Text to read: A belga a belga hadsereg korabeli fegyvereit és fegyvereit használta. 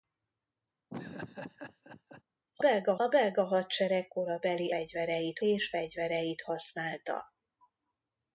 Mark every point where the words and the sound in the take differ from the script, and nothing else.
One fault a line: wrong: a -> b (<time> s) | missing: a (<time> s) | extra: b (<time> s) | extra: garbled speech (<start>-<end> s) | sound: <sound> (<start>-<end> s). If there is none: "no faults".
sound: laugh (0.9-2.2 s)